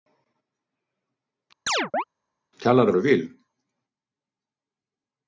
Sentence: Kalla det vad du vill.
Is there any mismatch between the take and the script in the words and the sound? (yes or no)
yes